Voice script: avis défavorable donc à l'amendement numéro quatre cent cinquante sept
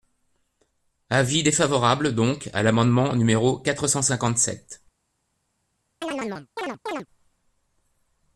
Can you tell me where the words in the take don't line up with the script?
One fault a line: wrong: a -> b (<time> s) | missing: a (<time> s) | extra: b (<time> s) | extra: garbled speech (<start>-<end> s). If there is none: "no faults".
no faults